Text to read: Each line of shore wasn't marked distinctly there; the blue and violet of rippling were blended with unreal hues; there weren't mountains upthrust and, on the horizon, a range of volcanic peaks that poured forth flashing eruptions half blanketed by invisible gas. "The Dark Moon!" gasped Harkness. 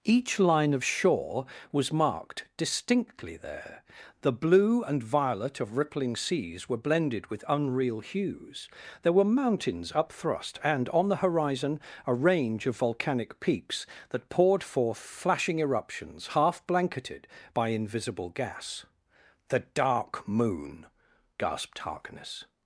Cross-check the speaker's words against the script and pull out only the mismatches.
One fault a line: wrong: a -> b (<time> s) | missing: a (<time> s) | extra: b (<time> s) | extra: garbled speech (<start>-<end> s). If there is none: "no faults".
wrong: wasn't -> was (1.7 s)
extra: seas (6.1 s)
wrong: weren't -> were (9.1 s)